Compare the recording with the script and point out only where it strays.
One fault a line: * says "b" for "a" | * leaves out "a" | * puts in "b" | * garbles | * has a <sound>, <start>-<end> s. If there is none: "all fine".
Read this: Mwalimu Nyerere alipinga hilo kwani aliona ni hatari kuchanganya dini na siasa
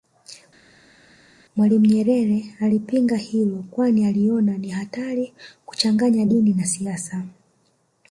all fine